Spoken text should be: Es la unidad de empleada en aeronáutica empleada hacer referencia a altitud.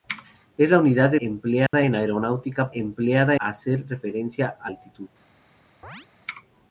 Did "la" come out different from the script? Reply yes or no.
no